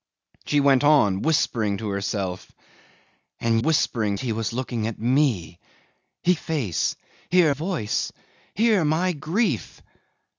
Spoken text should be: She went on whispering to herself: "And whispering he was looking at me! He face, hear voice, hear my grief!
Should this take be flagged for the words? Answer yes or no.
no